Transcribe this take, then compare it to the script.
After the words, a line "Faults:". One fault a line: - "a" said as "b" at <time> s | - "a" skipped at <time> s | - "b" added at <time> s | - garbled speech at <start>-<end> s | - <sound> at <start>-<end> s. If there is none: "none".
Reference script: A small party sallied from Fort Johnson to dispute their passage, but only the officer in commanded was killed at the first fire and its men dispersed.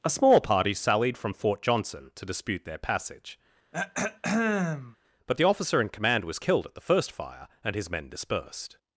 A small party sallied from Fort Johnson to dispute their passage, but the officer in command was killed at the first fire and his men dispersed.
Faults:
- throat clearing at 3.7-5.0 s
- "only" skipped at 5.4 s
- "commanded" said as "command" at 5.9 s
- "its" said as "his" at 7.7 s